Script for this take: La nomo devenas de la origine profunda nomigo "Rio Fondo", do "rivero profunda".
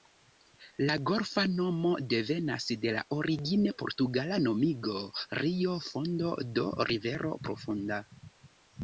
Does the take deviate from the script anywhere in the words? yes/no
yes